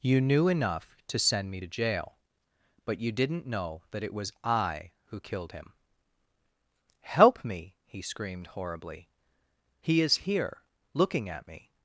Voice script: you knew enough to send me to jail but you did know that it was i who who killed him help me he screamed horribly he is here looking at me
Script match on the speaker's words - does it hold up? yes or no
no